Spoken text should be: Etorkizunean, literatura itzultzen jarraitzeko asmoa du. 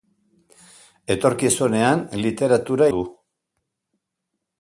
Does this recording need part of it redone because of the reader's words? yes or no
yes